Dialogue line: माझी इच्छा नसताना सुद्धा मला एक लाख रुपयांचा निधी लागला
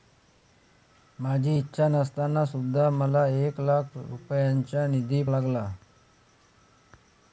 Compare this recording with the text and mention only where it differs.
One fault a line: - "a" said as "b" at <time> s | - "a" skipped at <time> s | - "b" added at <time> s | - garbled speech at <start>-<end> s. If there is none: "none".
none